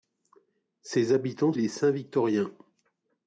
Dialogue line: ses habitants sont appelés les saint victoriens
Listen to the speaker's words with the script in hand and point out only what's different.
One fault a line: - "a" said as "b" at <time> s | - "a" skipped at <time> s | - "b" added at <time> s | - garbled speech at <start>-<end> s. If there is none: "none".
- "sont appelés" skipped at 1.5 s